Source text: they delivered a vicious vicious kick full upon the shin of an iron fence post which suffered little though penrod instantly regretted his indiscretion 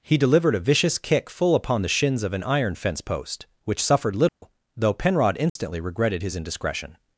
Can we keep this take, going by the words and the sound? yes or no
no